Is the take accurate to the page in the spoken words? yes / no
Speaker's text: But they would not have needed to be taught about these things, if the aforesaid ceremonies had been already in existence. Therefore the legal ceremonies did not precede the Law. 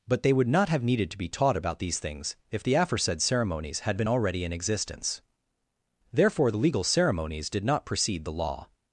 yes